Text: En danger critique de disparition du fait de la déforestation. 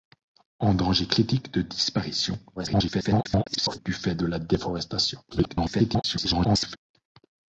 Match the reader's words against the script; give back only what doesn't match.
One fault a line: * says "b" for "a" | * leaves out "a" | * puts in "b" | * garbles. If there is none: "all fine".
* garbles
* garbles